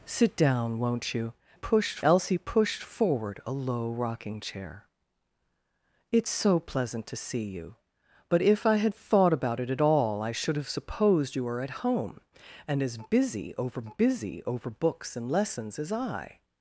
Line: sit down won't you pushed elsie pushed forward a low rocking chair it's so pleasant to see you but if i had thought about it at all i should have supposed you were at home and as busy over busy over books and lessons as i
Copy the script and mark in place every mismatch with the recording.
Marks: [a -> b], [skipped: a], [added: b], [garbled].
sit down won't you pushed elsie pushed forward a low rocking chair it's so pleasant to see you but if i had thought about it at all i should have supposed you were at home and as busy over busy over books and lessons as i